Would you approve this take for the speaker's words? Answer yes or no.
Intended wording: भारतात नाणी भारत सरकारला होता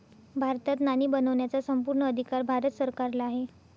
no